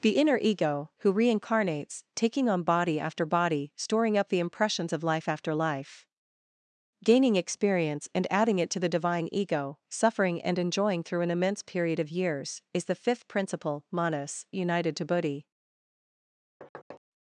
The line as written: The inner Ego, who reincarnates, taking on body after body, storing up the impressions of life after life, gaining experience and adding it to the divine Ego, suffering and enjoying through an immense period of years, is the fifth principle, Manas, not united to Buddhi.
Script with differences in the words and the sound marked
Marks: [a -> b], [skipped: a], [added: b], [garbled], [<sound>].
The inner Ego, who reincarnates, taking on body after body, storing up the impressions of life after life, gaining experience and adding it to the divine Ego, suffering and enjoying through an immense period of years, is the fifth principle, Manas, [skipped: not] united to Buddhi. [thud]